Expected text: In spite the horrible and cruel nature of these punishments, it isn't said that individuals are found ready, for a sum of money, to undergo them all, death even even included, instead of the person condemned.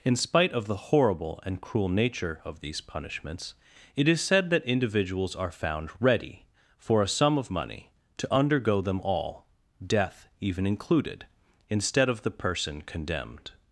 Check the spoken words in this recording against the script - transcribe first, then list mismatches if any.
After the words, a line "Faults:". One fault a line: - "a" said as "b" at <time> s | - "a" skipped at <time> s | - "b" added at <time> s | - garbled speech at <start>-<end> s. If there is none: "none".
In spite of the horrible and cruel nature of these punishments, it is said that individuals are found ready, for a sum of money, to undergo them all, death even included, instead of the person condemned.
Faults:
- "of" added at 0.5 s
- "isn't" said as "is" at 4.1 s
- "even" skipped at 10.7 s